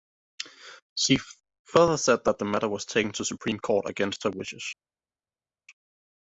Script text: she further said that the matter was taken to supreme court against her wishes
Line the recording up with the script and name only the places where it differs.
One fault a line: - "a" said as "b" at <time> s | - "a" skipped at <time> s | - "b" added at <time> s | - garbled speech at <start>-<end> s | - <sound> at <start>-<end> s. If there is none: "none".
none